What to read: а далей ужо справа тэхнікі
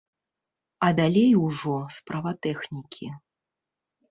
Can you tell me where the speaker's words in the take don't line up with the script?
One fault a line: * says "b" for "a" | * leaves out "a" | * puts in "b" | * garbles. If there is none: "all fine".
all fine